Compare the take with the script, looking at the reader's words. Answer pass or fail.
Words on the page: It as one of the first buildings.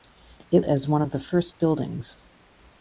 pass